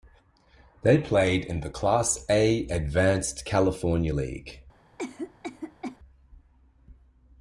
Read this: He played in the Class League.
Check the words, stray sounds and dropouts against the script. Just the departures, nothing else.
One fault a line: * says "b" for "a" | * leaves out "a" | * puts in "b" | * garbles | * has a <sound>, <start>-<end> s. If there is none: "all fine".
* says "They" for "He"
* puts in "A Advanced California"
* has a cough, 5.0-6.0 s